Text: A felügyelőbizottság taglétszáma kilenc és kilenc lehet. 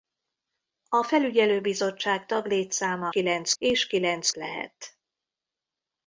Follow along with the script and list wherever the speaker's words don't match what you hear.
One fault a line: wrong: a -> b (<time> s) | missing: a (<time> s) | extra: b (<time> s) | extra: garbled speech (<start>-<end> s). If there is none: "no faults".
no faults